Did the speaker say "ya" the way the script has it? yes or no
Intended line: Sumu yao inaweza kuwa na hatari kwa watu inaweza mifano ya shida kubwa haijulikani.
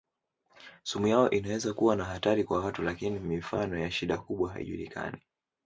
yes